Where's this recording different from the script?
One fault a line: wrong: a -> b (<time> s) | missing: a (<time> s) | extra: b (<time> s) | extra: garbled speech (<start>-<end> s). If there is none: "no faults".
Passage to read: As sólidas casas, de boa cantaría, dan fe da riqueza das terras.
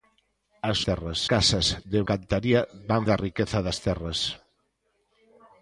wrong: sólidas -> terras (0.9 s)
missing: boa (2.0 s)
missing: fe (3.0 s)